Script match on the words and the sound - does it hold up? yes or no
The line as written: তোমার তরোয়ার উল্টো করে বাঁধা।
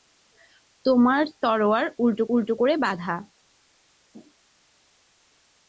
no